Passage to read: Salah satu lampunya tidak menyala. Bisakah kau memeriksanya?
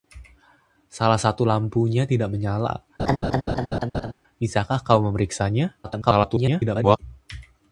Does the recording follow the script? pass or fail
fail